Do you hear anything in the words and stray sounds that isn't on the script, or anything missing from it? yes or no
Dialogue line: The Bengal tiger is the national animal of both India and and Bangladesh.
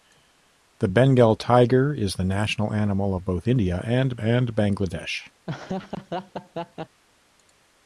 yes